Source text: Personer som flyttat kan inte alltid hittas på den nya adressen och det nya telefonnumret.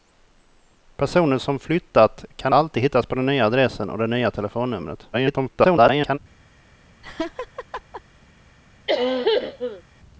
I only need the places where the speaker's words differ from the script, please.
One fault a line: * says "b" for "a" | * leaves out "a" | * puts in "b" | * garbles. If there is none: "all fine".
* leaves out "inte"
* garbles